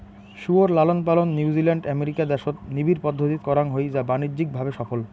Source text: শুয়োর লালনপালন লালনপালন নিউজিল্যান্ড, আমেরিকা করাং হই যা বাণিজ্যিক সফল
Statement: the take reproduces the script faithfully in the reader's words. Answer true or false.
false